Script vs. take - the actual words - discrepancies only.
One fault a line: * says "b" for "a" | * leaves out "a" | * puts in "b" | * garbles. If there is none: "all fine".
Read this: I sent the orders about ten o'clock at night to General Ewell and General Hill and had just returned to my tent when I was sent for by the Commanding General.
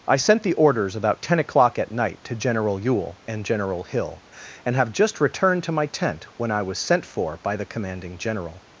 * says "have" for "had"